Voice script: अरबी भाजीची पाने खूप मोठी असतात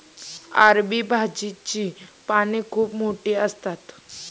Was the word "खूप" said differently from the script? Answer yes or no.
no